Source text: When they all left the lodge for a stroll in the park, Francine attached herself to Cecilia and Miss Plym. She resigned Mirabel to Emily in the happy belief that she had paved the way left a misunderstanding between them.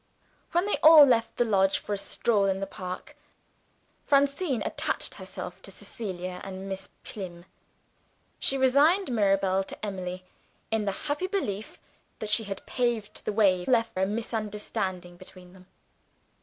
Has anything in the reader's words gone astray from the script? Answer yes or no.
no